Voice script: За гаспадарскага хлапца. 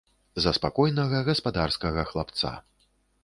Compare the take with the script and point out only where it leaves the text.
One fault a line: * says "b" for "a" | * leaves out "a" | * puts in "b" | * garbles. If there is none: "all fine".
* puts in "спакойнага"